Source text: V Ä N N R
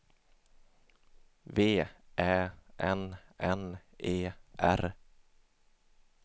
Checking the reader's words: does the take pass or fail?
fail